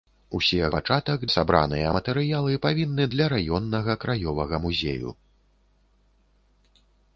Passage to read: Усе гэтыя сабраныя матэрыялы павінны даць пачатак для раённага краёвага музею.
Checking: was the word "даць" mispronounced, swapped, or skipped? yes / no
yes